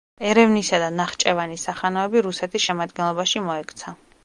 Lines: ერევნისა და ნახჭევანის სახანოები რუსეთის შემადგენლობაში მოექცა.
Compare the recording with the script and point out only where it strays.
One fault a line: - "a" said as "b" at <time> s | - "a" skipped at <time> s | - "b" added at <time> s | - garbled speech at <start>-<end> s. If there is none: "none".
none